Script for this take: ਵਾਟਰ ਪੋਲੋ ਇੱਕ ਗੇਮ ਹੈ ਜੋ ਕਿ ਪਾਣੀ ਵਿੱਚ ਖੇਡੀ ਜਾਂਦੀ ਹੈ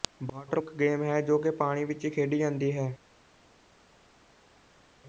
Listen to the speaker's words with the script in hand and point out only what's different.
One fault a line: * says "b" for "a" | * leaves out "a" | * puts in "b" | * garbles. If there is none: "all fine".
* leaves out "ਪੋਲੋ"